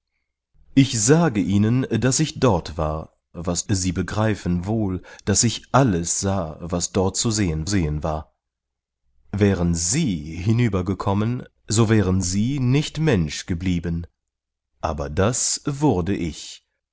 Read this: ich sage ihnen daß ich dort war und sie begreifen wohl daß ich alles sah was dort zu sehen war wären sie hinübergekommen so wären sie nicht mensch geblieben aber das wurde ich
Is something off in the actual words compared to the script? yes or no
yes